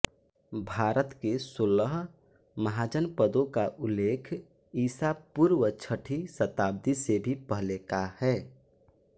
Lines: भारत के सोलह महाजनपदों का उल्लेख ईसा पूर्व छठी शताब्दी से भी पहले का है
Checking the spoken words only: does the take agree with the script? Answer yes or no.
yes